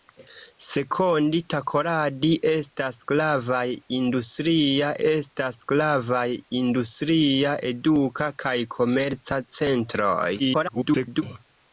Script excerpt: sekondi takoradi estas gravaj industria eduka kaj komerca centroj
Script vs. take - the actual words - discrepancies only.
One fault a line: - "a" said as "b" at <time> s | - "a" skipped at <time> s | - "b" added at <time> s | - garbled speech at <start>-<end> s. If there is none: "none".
- "estas gravaj industria" added at 5.1 s
- garbled speech at 10.4-11.2 s